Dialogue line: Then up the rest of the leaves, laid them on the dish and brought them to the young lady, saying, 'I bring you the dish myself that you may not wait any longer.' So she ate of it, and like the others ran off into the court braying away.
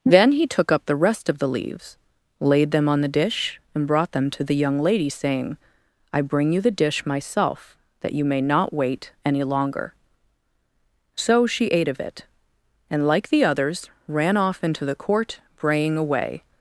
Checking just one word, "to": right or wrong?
right